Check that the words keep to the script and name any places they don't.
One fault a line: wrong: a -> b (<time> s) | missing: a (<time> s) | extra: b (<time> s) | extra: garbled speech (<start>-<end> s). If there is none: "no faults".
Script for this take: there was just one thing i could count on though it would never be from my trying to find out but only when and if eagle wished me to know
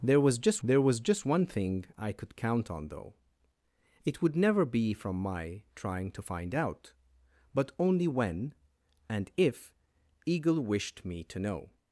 extra: there was just (0.6 s)